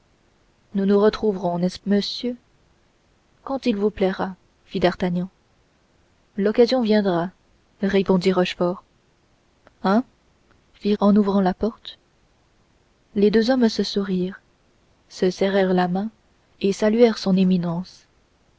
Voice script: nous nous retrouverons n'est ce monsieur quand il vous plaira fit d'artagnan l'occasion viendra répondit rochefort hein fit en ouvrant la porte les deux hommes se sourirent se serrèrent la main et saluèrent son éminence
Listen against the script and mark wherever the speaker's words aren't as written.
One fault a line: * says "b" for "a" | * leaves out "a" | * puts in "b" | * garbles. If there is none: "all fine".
all fine